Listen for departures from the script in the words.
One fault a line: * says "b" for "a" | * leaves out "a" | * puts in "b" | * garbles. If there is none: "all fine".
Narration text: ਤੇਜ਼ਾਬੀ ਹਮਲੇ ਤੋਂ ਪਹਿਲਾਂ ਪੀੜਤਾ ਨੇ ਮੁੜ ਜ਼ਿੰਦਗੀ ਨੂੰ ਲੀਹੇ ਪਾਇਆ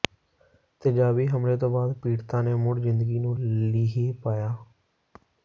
* says "ਬਾਅਦ" for "ਪਹਿਲਾਂ"